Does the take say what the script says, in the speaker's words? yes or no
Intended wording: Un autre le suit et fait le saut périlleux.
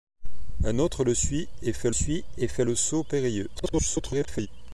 no